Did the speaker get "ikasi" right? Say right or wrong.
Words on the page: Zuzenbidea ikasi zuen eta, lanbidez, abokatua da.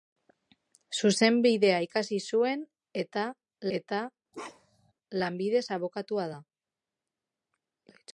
right